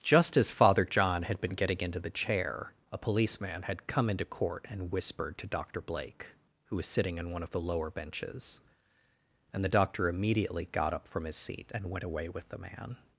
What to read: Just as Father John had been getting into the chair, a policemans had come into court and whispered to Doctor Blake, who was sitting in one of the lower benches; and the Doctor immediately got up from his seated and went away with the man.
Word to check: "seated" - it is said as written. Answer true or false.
false